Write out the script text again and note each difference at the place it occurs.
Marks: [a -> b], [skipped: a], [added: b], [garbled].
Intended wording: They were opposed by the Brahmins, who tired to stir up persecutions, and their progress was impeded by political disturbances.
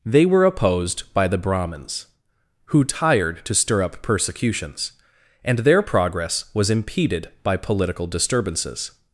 They were opposed by the Brahmins, who tired to stir up persecutions, and their progress was impeded by political disturbances.